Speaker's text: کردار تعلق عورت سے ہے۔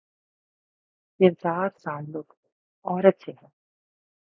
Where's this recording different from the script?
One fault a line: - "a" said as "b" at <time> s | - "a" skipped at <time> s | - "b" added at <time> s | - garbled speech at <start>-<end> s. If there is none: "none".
none